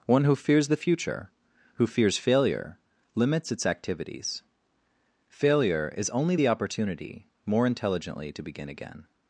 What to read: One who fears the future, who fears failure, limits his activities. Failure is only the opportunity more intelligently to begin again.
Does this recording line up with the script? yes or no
no